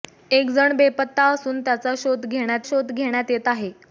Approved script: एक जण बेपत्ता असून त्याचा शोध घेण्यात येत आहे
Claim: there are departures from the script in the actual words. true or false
true